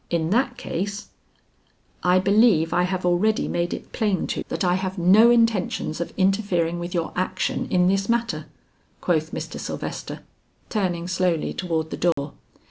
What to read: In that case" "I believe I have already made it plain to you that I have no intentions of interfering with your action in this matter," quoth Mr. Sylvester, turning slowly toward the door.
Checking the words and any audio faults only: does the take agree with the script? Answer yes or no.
no